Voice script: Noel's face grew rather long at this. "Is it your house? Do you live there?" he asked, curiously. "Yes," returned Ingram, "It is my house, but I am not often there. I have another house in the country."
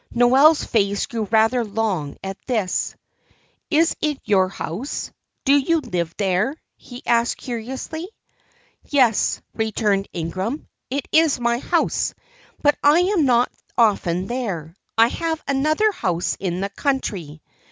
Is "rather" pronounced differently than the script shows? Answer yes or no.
no